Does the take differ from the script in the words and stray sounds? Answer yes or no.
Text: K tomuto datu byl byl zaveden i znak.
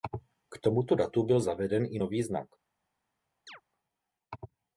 yes